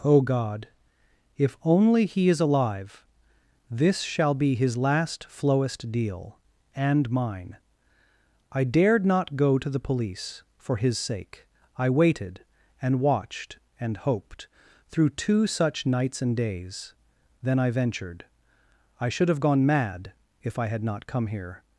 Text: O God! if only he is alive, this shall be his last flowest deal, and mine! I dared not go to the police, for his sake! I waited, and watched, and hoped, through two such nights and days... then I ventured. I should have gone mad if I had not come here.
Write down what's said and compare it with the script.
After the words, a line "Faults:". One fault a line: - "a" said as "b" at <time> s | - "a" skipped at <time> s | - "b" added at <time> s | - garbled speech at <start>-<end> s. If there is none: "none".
O God! if only he is alive, this shall be his last flowest deal, and mine! I dared not go to the police, for his sake! I waited, and watched, and hoped, through two such nights and days... then I ventured. I should have gone mad if I had not come here.
Faults:
none